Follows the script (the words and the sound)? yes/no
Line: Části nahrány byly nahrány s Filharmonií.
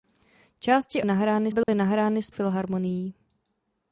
no